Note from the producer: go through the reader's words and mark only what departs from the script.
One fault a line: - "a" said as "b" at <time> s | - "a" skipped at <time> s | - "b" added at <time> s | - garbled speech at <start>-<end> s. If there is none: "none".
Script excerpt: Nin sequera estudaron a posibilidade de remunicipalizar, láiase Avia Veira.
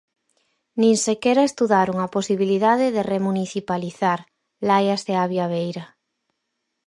none